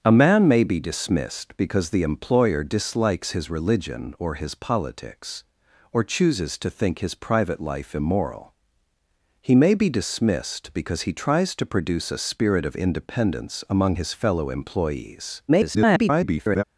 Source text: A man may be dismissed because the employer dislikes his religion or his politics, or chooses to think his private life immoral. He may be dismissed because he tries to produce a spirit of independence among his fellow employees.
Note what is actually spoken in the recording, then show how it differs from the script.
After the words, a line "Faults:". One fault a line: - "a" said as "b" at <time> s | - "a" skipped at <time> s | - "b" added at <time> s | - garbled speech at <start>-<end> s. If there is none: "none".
A man may be dismissed because the employer dislikes his religion or his politics, or chooses to think his private life immoral. He may be dismissed because he tries to produce a spirit of independence among his fellow employees. [garbled]
Faults:
- garbled speech at 15.5-16.6 s